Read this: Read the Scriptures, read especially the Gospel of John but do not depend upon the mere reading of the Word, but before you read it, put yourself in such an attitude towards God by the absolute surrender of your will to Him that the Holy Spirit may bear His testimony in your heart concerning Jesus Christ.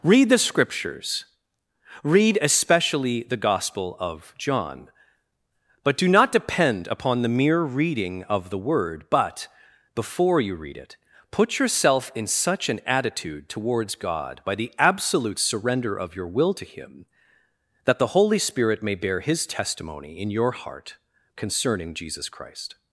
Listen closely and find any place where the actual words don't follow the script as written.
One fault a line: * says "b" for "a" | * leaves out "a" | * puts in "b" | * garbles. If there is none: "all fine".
all fine